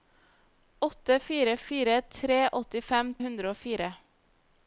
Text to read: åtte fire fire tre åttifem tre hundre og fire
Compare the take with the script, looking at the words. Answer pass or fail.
fail